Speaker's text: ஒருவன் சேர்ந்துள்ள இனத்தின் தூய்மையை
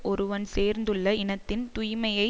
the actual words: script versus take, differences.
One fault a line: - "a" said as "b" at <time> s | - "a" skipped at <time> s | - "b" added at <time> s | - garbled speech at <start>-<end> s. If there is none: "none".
none